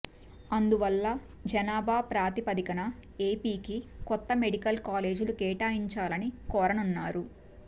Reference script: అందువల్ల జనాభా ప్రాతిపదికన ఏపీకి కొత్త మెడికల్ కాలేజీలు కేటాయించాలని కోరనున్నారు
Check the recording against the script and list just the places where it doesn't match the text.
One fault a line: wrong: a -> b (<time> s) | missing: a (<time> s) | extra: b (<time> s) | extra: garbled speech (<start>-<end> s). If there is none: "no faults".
no faults